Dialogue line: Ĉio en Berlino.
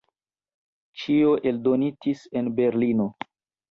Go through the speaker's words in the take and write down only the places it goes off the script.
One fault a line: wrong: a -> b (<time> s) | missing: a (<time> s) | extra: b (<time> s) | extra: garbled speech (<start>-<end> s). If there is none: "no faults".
extra: eldonitis (1.5 s)